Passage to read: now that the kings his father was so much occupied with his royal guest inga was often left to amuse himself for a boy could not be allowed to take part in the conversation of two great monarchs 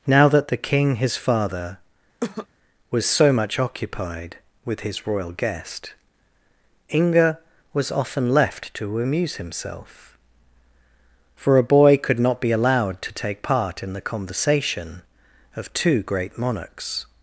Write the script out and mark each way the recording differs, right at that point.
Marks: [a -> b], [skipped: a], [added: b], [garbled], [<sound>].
now that the [kings -> king] his father [cough] was so much occupied with his royal guest inga was often left to amuse himself for a boy could not be allowed to take part in the conversation of two great monarchs